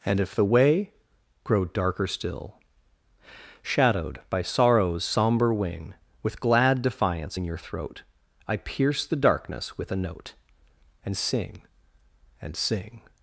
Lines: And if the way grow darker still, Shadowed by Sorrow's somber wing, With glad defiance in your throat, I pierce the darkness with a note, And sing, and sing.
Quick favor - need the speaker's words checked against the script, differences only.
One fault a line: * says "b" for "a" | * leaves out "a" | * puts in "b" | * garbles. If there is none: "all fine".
all fine